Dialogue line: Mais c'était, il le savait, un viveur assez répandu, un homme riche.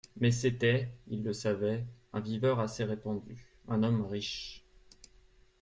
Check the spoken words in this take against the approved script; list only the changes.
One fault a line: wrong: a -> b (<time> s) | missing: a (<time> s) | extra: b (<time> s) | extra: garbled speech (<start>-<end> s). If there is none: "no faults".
no faults